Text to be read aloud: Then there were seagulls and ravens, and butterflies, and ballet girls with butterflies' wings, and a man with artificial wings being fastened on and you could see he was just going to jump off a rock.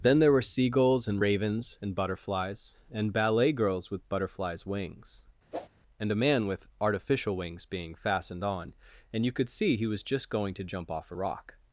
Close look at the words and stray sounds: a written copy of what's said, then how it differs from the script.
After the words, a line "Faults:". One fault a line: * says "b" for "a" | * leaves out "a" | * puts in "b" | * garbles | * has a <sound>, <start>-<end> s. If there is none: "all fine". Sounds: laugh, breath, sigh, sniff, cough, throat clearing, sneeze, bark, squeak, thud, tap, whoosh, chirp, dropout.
Then there were seagulls and ravens, and butterflies, and ballet girls with butterflies' wings, and a man with artificial wings being fastened on and you could see he was just going to jump off a rock.
Faults:
* has a whoosh, 5.5-5.7 s